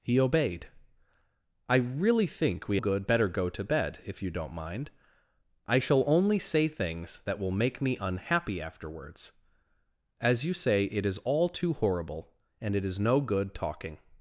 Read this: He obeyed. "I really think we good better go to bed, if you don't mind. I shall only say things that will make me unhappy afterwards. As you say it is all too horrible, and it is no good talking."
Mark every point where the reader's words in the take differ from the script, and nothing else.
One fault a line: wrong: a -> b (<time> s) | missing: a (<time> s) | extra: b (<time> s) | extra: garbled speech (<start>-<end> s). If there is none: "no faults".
no faults